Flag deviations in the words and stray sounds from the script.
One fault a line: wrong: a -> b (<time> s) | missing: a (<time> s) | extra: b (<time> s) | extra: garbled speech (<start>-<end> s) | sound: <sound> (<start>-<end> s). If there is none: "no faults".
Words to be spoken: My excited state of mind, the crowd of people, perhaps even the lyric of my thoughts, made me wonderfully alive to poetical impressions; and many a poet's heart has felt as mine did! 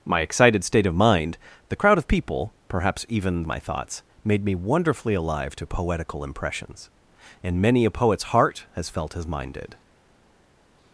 missing: the lyric of (3.4 s)